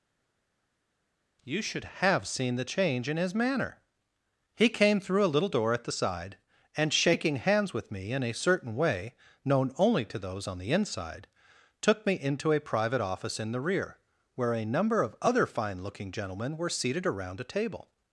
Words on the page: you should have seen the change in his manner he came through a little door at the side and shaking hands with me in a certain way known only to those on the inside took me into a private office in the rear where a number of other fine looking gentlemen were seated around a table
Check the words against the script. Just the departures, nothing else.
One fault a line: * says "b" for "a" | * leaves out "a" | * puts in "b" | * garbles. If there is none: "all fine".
all fine